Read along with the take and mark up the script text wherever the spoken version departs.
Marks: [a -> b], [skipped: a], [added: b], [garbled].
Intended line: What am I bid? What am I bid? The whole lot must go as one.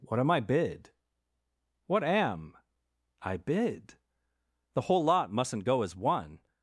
What am I bid? What am I bid? The whole lot [must -> mustn't] go as one.